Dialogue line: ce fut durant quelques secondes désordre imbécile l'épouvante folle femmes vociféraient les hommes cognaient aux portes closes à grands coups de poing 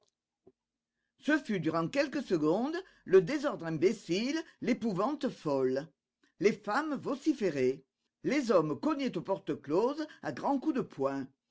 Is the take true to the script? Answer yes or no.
no